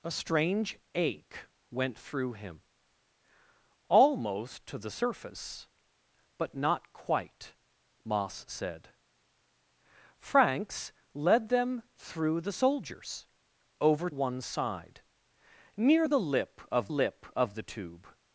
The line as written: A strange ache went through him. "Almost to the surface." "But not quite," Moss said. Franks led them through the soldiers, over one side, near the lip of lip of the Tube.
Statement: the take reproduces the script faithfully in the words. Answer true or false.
true